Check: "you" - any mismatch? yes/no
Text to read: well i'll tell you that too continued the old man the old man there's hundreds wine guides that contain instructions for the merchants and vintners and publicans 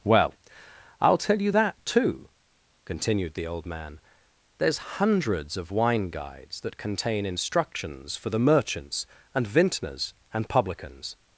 no